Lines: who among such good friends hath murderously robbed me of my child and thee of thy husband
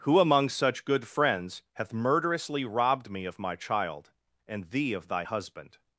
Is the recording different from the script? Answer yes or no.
no